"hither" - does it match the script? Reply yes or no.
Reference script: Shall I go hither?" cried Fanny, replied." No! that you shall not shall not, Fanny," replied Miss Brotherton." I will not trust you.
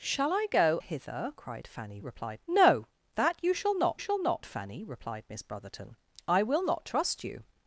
yes